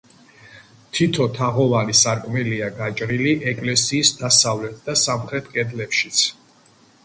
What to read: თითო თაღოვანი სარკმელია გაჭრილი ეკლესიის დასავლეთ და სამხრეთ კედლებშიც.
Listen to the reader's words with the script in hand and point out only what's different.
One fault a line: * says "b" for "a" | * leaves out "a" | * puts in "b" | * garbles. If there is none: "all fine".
all fine